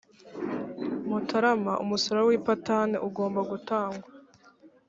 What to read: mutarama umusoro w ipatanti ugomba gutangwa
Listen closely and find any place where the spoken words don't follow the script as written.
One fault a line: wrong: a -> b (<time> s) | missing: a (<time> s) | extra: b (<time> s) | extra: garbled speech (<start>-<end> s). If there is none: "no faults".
no faults